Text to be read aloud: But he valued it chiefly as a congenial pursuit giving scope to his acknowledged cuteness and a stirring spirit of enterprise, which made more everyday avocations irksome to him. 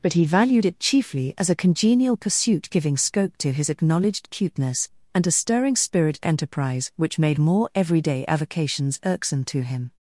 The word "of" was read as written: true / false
false